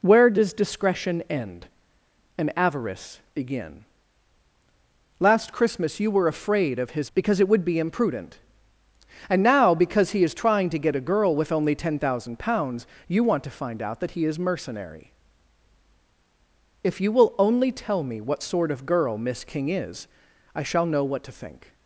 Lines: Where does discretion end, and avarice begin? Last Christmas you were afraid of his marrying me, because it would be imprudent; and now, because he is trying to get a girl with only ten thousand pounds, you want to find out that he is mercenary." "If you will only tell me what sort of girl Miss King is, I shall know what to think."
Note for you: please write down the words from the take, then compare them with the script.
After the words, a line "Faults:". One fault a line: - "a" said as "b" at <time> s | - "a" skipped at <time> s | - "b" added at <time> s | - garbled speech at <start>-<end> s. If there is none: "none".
Where does discretion end, and avarice begin? Last Christmas you were afraid of his because it would be imprudent; and now, because he is trying to get a girl with only ten thousand pounds, you want to find out that he is mercenary." "If you will only tell me what sort of girl Miss King is, I shall know what to think."
Faults:
- "marrying me" skipped at 7.1 s